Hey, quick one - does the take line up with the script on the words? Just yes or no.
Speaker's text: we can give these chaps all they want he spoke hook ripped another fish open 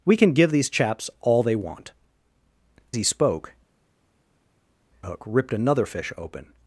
yes